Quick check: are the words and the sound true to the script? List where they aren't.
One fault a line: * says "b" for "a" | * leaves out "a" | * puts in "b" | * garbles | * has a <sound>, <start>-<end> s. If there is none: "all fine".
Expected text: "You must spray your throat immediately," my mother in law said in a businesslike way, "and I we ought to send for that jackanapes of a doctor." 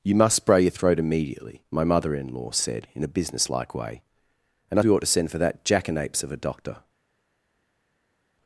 all fine